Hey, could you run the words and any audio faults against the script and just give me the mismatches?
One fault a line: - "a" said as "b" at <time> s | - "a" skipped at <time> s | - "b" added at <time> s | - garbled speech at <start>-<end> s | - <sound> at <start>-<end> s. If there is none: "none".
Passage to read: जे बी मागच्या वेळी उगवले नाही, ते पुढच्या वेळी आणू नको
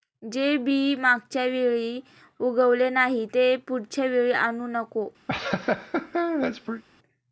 - laugh at 5.3-6.8 s